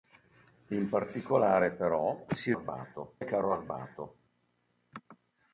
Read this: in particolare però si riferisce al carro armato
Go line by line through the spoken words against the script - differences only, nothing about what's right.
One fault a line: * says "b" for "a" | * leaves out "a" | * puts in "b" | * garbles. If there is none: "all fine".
* says "armato" for "riferisce"